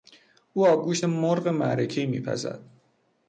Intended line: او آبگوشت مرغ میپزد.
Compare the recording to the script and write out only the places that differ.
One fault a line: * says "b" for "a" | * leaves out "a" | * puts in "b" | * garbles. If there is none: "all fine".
* puts in "معرکهای"